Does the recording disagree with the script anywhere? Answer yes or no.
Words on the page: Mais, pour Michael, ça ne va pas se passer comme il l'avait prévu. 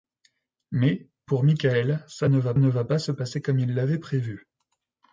yes